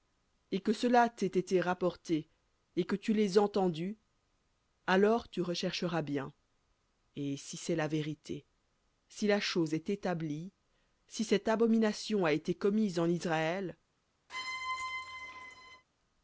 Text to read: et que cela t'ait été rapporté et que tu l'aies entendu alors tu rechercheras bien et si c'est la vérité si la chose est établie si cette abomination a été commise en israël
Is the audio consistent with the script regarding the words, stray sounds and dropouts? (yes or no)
no